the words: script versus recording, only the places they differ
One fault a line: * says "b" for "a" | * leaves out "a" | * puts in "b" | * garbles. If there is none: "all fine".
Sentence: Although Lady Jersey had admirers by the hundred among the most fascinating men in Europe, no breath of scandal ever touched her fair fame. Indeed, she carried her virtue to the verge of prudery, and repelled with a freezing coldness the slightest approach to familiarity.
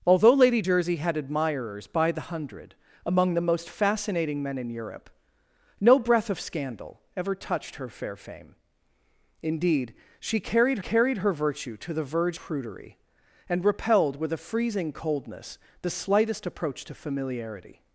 * puts in "carried"
* leaves out "of"